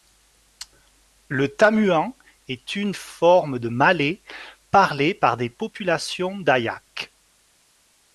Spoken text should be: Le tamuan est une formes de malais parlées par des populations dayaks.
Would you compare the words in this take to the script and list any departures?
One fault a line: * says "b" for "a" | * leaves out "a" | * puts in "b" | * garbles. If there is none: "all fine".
all fine